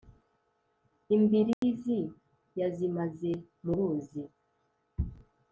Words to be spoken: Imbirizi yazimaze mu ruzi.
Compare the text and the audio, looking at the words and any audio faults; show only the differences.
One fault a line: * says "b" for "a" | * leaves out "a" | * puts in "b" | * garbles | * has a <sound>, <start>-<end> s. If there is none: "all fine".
* has a dropout, 1.5-1.6 s